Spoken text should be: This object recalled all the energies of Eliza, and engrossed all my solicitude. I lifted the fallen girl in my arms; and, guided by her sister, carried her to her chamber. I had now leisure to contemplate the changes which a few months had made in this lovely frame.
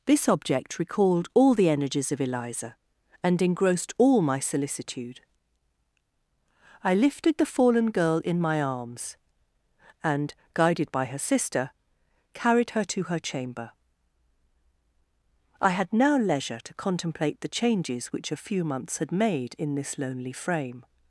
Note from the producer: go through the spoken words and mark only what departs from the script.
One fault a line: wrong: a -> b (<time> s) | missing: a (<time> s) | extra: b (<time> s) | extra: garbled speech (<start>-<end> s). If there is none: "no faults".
wrong: lovely -> lonely (20.0 s)